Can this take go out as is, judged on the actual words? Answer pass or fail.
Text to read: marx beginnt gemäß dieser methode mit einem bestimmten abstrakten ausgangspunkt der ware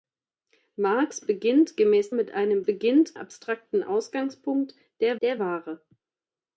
fail